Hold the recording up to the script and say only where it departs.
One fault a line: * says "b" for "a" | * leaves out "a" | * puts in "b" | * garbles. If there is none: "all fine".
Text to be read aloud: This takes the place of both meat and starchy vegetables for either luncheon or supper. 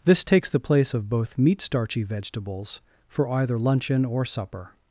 * leaves out "and"